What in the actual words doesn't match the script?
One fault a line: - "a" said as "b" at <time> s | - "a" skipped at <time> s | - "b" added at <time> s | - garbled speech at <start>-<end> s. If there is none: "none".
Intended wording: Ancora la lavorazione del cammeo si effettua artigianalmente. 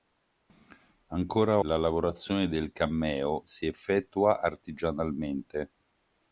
none